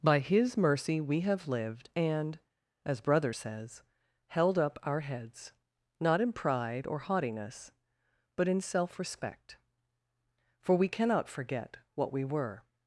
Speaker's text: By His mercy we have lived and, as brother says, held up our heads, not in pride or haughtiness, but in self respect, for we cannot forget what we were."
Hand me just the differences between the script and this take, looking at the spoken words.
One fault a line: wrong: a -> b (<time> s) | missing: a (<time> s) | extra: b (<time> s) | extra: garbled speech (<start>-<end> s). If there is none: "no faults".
no faults